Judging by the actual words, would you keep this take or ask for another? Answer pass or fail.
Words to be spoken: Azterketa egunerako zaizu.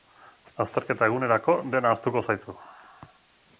fail